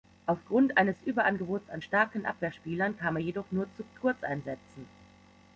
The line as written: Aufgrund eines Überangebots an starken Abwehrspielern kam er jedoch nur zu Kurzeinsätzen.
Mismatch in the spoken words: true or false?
false